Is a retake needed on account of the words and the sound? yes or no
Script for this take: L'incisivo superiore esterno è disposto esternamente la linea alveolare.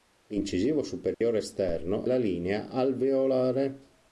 yes